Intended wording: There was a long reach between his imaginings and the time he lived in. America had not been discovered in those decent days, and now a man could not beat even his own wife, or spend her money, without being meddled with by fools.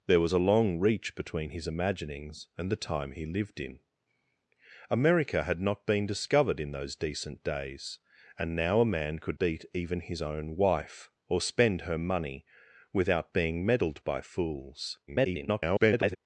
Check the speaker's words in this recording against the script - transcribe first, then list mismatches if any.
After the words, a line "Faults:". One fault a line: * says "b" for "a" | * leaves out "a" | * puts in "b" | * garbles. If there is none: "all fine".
There was a long reach between his imaginings and the time he lived in. America had not been discovered in those decent days, and now a man could beat even his own wife, or spend her money, without being meddled by fools. [garbled]
Faults:
* leaves out "not"
* leaves out "with"
* garbles